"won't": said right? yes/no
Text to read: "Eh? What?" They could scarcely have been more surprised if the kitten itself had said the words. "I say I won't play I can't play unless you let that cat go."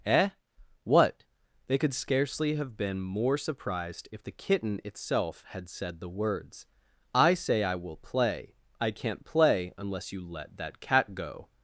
no